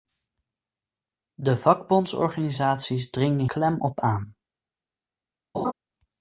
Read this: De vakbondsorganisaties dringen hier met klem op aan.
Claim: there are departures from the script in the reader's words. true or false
true